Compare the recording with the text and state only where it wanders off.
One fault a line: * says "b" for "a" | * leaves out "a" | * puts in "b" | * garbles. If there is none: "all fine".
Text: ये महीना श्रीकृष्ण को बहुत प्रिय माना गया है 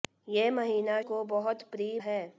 * leaves out "श्रीकृष्ण"
* leaves out "माना गया"